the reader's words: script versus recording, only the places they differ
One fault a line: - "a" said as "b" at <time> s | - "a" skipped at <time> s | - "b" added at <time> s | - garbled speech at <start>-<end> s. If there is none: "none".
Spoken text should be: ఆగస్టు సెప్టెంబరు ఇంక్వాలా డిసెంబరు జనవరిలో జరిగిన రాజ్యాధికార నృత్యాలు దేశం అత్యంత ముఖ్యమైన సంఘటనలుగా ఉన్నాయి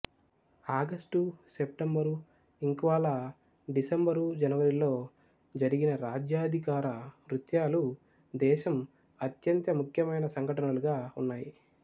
none